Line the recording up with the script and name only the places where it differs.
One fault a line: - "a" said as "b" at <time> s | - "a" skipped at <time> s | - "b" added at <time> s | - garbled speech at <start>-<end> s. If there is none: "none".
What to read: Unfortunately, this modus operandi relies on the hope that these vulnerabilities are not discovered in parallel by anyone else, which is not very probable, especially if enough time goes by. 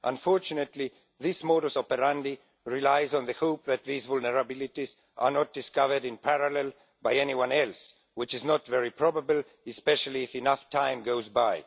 none